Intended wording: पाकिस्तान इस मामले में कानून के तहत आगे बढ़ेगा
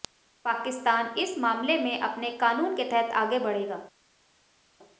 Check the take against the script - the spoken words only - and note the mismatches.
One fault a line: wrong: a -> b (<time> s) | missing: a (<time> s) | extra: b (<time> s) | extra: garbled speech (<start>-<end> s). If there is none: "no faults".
extra: अपने (2.0 s)